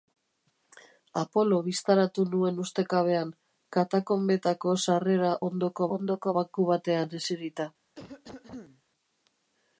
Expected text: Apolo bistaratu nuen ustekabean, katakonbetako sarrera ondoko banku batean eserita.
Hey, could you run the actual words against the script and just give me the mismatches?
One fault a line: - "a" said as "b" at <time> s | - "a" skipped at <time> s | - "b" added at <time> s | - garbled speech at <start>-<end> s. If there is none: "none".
- "ondoko" added at 6.0 s